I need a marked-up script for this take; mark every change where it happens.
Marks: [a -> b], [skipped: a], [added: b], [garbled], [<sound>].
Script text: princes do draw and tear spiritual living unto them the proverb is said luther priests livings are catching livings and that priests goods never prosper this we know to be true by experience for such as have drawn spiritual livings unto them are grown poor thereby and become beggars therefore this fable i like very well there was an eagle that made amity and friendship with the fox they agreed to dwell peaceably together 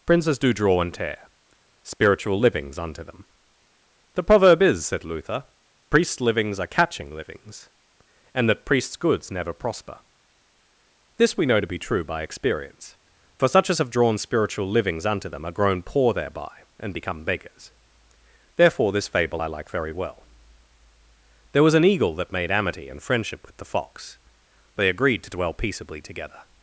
princes do draw and tear spiritual [living -> livings] unto them the proverb is said luther priests livings are catching livings and that priests goods never prosper this we know to be true by experience for such as have drawn spiritual livings unto them are grown poor thereby and become beggars therefore this fable i like very well there was an eagle that made amity and friendship with the fox they agreed to dwell peaceably together